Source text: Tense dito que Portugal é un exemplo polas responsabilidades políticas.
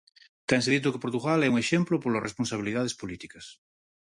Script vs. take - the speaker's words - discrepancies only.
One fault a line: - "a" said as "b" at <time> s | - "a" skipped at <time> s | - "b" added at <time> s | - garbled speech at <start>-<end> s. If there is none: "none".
none